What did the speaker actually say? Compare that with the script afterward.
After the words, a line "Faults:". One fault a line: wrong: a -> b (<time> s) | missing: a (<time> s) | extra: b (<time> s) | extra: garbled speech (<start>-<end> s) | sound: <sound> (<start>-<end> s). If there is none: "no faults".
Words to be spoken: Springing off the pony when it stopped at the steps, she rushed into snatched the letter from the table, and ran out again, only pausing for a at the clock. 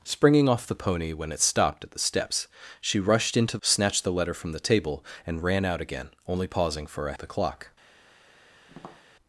Springing off the pony when it stopped at the steps, she rushed into snatched the letter from the table, and ran out again, only pausing for a at the clock.
Faults:
sound: tap (8.7-9.1 s)